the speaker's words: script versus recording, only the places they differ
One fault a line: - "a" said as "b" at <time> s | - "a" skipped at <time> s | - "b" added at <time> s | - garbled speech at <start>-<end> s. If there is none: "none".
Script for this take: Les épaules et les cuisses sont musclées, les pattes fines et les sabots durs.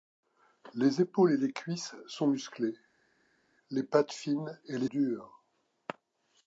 - "sabots" skipped at 4.9 s